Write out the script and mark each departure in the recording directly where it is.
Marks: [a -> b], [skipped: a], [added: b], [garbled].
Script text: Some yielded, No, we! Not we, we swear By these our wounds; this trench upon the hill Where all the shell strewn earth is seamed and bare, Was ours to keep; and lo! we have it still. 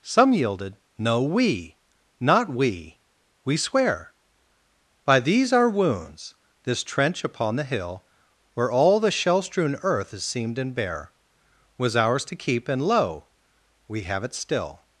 Some yielded, No, we! Not we, we swear By these our wounds; this trench upon the hill Where all the shell strewn earth is seamed and bare, Was ours to keep; and lo! we have it still.